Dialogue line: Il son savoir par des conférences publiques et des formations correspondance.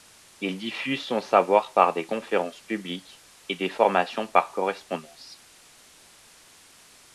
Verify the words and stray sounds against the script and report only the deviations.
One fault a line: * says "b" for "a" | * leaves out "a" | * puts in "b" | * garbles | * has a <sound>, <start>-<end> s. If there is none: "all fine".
* puts in "diffuse"
* puts in "par"